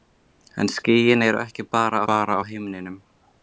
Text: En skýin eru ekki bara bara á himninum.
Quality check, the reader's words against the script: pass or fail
pass